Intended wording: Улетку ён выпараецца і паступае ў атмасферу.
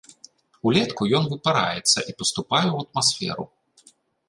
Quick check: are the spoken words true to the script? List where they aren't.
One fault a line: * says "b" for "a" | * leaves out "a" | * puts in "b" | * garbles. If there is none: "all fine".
all fine